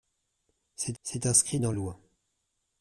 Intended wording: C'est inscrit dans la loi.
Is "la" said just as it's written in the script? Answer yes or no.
no